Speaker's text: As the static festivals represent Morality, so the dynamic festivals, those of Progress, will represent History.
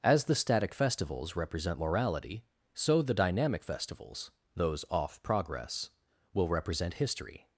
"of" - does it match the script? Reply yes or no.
no